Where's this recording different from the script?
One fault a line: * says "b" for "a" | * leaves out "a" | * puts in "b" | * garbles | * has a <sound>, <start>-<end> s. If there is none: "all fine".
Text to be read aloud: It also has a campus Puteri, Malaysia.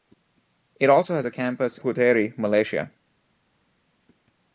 all fine